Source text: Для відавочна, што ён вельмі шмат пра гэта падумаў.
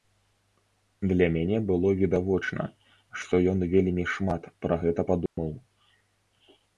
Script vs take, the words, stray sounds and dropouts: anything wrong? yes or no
yes